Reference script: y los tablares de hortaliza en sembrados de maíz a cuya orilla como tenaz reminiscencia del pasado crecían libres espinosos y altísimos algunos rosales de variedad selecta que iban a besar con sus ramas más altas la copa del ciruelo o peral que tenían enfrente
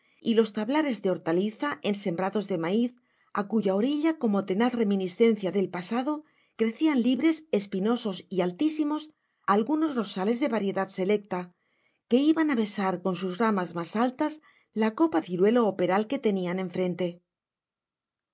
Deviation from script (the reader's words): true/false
true